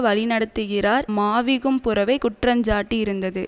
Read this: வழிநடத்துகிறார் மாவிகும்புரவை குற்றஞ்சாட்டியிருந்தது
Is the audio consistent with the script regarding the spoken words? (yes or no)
yes